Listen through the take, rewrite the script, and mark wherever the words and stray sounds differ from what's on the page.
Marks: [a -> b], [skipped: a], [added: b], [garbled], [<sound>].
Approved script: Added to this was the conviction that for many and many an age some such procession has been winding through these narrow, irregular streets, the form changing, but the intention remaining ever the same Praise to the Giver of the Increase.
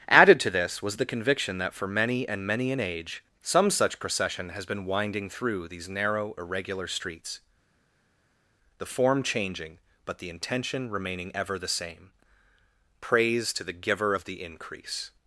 Added to this was the conviction that for many and many an age some such procession has been winding through these narrow, irregular streets, the form changing, but the intention remaining ever the same Praise to the Giver of the Increase.